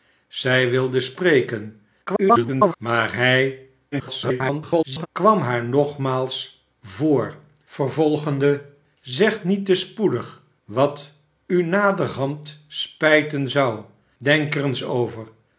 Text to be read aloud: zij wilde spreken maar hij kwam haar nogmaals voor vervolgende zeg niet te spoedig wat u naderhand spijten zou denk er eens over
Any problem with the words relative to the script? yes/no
yes